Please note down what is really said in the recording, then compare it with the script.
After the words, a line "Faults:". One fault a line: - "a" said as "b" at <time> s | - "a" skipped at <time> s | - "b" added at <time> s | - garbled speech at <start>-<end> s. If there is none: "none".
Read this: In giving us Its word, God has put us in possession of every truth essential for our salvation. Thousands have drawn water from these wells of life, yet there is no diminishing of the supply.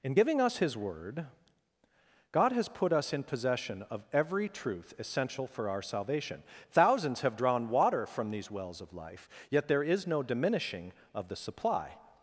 In giving us His word, God has put us in possession of every truth essential for our salvation. Thousands have drawn water from these wells of life, yet there is no diminishing of the supply.
Faults:
- "Its" said as "His" at 0.6 s